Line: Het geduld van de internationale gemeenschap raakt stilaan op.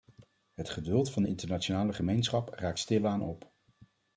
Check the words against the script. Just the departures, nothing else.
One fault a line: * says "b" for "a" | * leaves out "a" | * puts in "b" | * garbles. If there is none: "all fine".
all fine